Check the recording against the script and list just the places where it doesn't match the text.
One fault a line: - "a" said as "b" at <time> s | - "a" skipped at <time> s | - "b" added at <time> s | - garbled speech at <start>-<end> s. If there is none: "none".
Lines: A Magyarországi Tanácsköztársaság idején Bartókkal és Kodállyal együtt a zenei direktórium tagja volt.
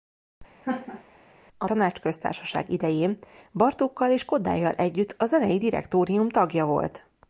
- "Magyarországi" skipped at 1.7 s